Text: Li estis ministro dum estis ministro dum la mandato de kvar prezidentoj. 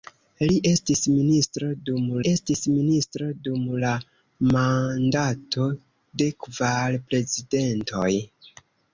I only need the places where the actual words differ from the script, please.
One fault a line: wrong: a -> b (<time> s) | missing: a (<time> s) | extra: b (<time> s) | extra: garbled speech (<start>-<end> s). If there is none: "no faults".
no faults